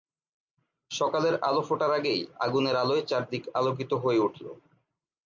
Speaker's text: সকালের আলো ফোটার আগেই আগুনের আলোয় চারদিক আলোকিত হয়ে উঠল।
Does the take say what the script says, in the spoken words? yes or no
yes